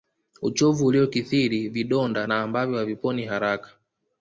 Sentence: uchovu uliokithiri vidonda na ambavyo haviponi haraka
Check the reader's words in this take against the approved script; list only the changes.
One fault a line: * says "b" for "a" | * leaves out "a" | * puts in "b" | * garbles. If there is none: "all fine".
all fine